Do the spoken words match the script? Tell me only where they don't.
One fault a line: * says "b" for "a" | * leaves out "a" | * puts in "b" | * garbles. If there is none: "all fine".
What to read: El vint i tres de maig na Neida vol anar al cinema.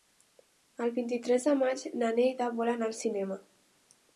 all fine